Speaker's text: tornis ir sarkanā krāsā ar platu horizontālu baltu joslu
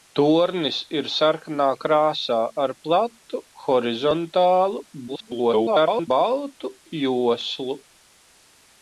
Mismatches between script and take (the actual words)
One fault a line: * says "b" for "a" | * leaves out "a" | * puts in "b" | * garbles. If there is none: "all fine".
* garbles